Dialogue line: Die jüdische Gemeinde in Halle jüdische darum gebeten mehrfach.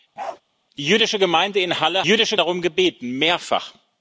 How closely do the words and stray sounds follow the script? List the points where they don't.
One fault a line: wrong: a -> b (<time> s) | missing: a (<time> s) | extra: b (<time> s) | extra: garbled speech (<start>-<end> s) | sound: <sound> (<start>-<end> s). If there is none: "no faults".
sound: bark (0.2-0.4 s)